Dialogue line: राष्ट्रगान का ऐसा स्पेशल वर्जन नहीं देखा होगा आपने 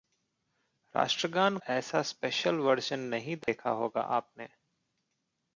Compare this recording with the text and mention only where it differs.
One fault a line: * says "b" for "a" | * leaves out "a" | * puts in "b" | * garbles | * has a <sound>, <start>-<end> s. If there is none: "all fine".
* leaves out "का"
* has a dropout, 3.4-3.5 s